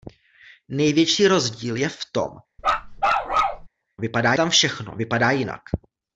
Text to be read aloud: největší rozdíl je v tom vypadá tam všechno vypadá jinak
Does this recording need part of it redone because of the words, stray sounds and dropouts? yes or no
yes